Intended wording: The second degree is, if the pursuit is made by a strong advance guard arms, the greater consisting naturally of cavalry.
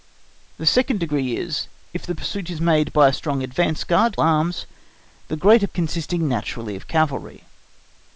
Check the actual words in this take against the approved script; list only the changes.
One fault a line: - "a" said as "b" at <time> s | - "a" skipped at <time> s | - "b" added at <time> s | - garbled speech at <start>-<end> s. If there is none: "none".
none